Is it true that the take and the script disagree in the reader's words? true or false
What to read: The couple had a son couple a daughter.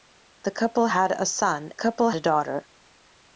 false